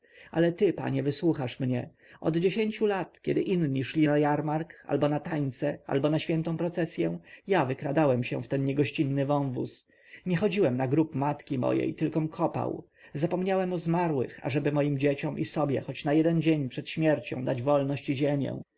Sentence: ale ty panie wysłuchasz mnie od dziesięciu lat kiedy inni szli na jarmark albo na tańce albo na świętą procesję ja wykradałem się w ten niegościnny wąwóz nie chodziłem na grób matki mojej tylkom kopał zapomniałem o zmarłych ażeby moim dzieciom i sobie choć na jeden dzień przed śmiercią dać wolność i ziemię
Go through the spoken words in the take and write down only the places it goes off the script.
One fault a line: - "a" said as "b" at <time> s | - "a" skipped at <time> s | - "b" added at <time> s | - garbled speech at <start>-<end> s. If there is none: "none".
none